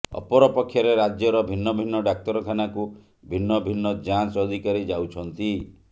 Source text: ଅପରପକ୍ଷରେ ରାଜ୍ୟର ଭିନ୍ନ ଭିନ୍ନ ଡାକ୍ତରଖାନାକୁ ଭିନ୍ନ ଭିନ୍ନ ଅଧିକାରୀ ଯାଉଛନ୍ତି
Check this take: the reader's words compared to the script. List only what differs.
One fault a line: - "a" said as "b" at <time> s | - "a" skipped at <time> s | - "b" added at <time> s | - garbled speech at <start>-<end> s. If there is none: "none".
- "ଯାଞ୍ଚ" added at 4.1 s